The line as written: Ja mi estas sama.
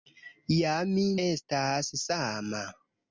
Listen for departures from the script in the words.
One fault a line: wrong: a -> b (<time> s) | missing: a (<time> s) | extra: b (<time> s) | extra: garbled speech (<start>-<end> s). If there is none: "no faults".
no faults